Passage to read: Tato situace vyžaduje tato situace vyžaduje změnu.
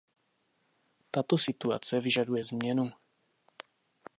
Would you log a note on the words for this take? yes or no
yes